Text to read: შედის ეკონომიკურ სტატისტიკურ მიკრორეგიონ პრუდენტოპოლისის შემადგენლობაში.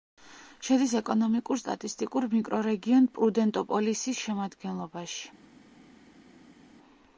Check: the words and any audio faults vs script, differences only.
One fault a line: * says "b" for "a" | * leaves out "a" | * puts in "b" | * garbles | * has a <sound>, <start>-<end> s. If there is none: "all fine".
all fine